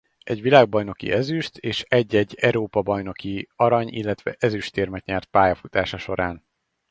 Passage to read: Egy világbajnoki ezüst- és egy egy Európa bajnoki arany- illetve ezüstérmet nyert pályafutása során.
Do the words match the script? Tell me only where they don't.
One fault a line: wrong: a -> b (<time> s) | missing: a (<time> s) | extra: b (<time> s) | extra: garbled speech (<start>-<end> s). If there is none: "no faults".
no faults